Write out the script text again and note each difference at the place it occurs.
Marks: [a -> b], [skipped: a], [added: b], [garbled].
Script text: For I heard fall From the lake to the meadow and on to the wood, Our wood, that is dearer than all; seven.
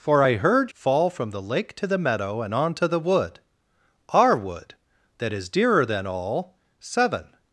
For I heard fall From the lake to the meadow and on to the wood, Our wood, that is dearer than all; seven.